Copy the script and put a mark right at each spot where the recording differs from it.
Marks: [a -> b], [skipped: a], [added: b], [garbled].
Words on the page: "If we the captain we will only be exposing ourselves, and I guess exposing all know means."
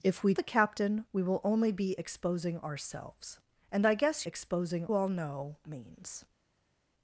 "If we the captain we will only be exposing ourselves, and I guess exposing all know means."